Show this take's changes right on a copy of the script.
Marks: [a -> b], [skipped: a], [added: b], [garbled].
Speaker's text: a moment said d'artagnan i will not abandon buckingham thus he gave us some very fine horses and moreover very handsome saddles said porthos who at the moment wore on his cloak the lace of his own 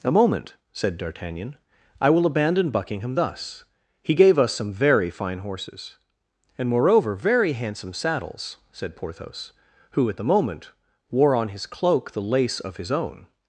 a moment said d'artagnan i will [skipped: not] abandon buckingham thus he gave us some very fine horses and moreover very handsome saddles said porthos who at the moment wore on his cloak the lace of his own